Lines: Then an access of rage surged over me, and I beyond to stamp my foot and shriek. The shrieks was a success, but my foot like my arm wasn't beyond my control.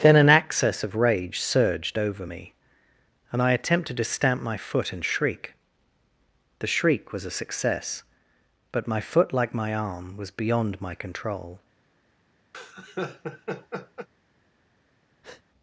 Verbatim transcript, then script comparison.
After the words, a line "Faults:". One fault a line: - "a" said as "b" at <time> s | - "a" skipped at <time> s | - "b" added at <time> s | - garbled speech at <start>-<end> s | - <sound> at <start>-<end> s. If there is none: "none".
Then an access of rage surged over me, and I attempted to stamp my foot and shriek. The shriek was a success, but my foot like my arm was beyond my control.
Faults:
- "beyond" said as "attempted" at 3.5 s
- "shrieks" said as "shriek" at 6.7 s
- "wasn't" said as "was" at 10.2 s
- laugh at 12.5-14.1 s
- breath at 15.2-15.4 s